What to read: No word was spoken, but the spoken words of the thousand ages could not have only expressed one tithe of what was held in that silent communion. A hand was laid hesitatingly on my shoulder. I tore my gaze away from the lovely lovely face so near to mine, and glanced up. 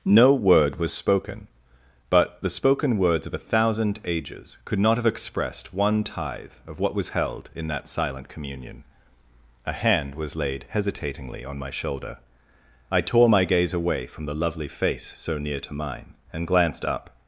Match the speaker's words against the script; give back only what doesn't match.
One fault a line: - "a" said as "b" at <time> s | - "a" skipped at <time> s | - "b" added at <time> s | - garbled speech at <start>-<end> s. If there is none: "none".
- "the" said as "a" at 3.4 s
- "only" skipped at 5.0 s
- "lovely" skipped at 14.7 s